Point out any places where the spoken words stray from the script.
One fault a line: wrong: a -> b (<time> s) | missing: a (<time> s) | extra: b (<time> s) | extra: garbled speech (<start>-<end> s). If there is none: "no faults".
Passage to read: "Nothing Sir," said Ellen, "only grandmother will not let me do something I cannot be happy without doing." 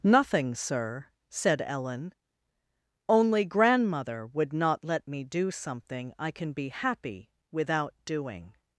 wrong: will -> would (4.3 s)
wrong: cannot -> can (6.3 s)